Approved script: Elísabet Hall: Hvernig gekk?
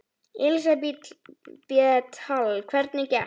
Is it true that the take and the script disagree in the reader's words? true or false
false